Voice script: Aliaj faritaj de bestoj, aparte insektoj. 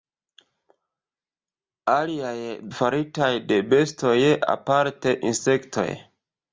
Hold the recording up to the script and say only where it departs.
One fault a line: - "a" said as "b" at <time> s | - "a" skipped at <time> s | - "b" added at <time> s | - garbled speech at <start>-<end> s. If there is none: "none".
none